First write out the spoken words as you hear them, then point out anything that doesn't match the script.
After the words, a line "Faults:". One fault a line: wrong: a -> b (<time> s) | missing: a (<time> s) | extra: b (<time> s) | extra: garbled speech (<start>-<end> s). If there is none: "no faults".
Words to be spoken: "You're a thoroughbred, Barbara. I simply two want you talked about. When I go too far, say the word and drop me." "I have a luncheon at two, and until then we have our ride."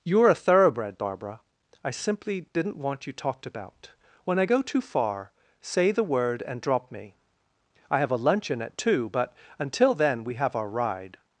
"You're a thoroughbred, Barbara. I simply didn't want you talked about. When I go too far, say the word and drop me." "I have a luncheon at two, but until then we have our ride."
Faults:
wrong: two -> didn't (2.5 s)
wrong: and -> but (9.1 s)